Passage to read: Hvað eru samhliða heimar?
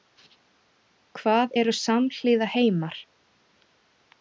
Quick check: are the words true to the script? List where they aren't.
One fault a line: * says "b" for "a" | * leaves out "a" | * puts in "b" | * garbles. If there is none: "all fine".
all fine